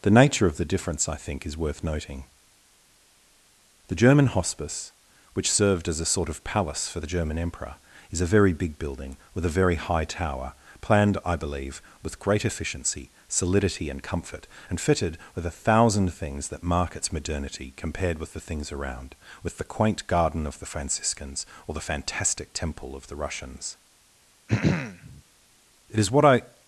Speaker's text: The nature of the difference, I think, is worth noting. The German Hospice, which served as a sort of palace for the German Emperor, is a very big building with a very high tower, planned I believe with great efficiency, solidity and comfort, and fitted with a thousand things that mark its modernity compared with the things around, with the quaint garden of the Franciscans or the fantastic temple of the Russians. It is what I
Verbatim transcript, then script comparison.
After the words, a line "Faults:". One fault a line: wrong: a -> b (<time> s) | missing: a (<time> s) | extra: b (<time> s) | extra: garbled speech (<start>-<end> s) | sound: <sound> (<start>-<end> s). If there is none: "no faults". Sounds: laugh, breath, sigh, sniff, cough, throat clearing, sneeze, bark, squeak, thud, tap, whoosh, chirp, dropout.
The nature of the difference, I think, is worth noting. The German Hospice, which served as a sort of palace for the German Emperor, is a very big building with a very high tower, planned I believe with great efficiency, solidity and comfort, and fitted with a thousand things that mark its modernity compared with the things around, with the quaint garden of the Franciscans or the fantastic temple of the Russians. It is what I
Faults:
sound: throat clearing (24.5-25.2 s)